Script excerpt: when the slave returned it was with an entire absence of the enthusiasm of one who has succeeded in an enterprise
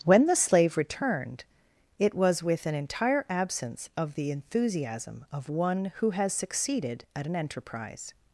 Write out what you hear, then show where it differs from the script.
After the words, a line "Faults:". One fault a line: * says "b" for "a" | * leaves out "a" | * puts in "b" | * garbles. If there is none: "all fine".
when the slave returned it was with an entire absence of the enthusiasm of one who has succeeded at an enterprise
Faults:
* says "at" for "in"